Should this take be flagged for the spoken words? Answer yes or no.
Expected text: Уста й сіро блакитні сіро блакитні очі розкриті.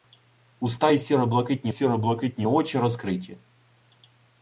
no